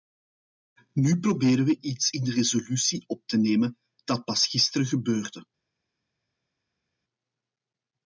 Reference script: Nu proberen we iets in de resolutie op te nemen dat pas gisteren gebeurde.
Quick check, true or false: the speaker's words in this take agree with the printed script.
true